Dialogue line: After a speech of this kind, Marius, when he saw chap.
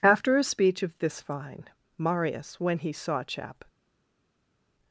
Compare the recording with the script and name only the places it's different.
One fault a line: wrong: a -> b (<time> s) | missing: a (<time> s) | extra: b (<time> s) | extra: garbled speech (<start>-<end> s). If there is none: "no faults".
wrong: kind -> fine (1.2 s)